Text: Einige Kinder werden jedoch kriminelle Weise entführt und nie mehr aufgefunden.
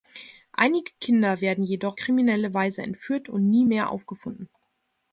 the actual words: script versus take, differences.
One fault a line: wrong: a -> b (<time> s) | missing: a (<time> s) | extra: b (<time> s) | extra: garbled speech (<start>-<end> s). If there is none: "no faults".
no faults